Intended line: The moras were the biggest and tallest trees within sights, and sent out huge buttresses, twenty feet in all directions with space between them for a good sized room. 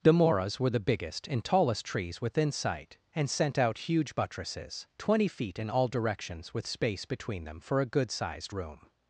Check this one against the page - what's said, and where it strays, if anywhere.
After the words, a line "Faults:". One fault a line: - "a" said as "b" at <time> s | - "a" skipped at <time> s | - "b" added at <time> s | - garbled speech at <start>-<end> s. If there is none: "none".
The moras were the biggest and tallest trees within sight, and sent out huge buttresses, twenty feet in all directions with space between them for a good sized room.
Faults:
- "sights" said as "sight" at 2.5 s